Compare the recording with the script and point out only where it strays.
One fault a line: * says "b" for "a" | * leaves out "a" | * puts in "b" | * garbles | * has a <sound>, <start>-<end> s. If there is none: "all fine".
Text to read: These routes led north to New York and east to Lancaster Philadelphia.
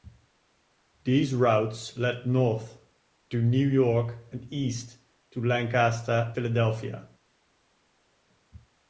all fine